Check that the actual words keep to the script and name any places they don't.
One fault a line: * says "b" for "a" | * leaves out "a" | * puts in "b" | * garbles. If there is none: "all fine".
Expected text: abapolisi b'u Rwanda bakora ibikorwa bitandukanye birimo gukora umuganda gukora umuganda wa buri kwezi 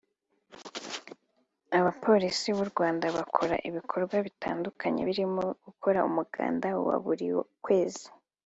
* leaves out "gukora umuganda"